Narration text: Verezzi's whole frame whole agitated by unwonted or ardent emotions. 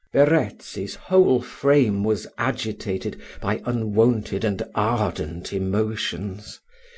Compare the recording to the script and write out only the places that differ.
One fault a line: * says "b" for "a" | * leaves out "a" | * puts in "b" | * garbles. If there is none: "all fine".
* says "was" for "whole"
* says "and" for "or"